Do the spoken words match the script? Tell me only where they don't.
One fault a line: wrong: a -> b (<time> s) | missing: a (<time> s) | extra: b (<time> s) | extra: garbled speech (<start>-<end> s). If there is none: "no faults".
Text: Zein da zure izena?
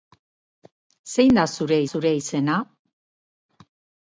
extra: zure (1.9 s)